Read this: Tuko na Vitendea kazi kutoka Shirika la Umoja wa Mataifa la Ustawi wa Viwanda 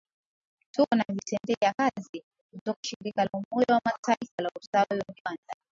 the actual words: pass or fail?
pass